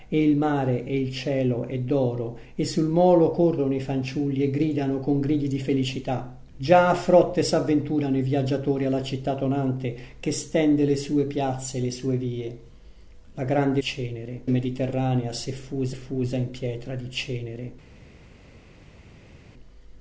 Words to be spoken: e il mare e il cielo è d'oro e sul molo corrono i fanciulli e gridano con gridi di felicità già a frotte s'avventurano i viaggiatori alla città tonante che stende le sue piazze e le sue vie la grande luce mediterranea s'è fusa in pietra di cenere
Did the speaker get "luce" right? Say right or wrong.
wrong